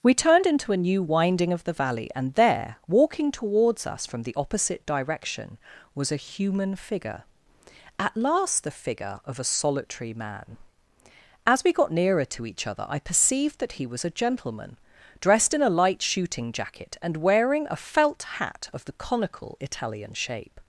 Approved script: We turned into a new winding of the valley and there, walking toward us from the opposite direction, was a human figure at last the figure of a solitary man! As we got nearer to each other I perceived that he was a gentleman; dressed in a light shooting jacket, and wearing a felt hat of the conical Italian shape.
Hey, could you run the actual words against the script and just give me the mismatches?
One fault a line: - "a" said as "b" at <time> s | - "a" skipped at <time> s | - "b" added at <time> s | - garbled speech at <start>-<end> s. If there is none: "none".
- "toward" said as "towards" at 3.3 s